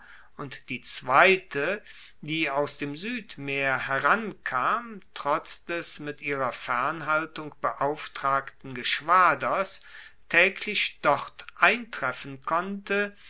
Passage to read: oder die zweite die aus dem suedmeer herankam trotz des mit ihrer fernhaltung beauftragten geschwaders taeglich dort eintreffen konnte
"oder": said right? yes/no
no